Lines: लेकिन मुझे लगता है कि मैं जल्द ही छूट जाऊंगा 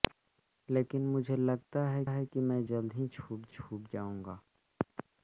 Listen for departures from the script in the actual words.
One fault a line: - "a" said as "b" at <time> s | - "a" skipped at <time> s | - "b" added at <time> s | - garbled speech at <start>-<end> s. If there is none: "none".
- "है" added at 2.1 s
- "छूट" added at 3.5 s